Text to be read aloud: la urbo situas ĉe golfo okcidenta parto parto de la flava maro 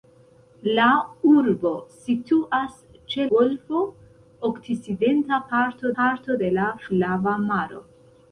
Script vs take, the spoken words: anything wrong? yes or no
no